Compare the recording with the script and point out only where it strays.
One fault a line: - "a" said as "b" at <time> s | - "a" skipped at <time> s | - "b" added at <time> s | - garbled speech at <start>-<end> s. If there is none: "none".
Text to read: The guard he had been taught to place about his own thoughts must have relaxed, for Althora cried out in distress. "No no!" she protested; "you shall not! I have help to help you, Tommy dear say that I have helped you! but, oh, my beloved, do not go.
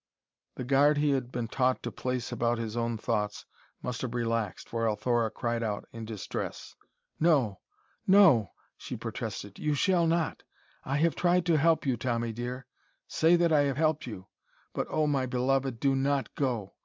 - "help" said as "tried" at 11.2 s